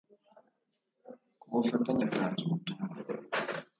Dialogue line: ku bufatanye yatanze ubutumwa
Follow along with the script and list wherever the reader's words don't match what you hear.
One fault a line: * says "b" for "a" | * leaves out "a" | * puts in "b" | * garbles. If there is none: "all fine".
all fine